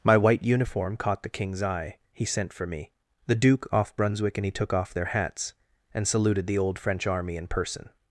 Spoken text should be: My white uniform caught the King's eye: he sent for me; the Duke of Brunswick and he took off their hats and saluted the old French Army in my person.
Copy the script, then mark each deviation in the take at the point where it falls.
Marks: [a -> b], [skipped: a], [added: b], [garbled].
My white uniform caught the King's eye: he sent for me; the Duke [of -> off] Brunswick and he took off their hats and saluted the old French Army in [skipped: my] person.